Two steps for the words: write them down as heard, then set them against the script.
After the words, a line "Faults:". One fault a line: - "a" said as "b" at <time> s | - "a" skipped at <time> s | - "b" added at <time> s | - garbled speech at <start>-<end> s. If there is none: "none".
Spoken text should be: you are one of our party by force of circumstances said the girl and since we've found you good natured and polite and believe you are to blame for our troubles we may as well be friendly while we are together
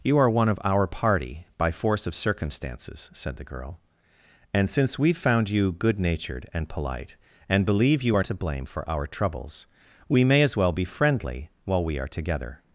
you are one of our party by force of circumstances said the girl and since we've found you good natured and polite and believe you are to blame for our troubles we may as well be friendly while we are together
Faults:
none